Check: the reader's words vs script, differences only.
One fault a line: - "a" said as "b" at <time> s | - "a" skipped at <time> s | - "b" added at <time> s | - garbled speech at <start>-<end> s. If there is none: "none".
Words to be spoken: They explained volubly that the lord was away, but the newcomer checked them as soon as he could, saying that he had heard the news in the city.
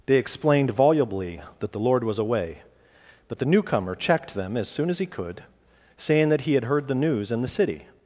none